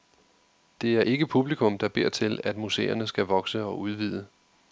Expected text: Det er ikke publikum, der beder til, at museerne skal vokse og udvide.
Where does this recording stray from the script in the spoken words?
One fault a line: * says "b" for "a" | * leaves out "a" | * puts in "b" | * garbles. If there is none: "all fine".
all fine